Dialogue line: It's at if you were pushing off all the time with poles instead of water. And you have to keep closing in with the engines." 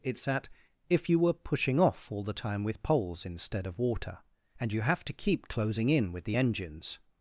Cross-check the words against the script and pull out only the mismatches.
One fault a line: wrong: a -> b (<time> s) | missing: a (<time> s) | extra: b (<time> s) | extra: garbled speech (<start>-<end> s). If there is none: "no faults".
no faults